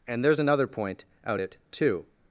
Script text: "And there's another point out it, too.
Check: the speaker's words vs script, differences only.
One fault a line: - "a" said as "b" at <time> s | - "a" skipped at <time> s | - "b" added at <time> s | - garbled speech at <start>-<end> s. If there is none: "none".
none